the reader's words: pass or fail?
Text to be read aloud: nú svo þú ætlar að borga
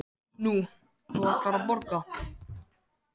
fail